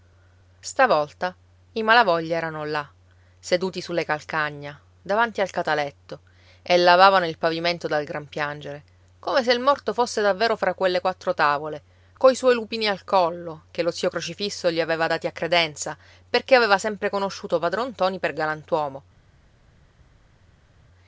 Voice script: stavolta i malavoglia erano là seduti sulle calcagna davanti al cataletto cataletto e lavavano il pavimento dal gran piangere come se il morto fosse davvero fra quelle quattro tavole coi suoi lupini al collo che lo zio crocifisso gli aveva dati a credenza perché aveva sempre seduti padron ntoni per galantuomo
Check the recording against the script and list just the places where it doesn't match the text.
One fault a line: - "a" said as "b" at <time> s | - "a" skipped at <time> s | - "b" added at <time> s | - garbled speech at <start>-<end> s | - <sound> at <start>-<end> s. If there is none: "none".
- "cataletto" skipped at 6.2 s
- "seduti" said as "conosciuto" at 17.1 s